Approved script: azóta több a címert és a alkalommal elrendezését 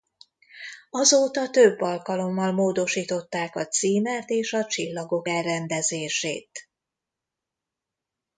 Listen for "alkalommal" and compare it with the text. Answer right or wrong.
wrong